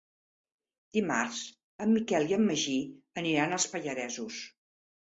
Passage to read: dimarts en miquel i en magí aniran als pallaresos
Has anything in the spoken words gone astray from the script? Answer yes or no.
no